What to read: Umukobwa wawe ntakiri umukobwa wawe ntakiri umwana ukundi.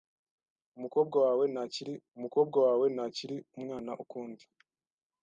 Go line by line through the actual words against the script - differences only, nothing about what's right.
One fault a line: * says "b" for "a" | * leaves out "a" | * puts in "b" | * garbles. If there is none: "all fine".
all fine